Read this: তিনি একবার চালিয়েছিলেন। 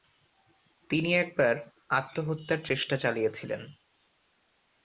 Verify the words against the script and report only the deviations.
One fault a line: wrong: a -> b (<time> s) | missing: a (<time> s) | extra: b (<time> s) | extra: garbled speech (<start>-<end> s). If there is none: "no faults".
extra: আত্মহত্যার চেষ্টা (1.9 s)